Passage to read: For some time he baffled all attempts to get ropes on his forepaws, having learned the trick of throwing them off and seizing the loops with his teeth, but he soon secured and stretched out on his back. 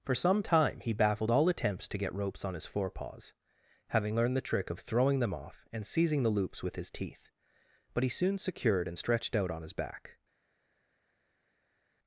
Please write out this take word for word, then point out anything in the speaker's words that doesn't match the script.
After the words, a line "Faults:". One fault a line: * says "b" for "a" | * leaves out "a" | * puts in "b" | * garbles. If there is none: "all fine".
For some time he baffled all attempts to get ropes on his forepaws, having learned the trick of throwing them off and seizing the loops with his teeth, but he soon secured and stretched out on his back.
Faults:
all fine